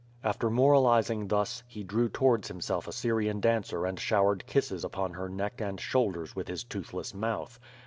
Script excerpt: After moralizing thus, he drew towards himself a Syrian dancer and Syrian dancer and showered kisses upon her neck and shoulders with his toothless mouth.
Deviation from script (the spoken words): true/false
true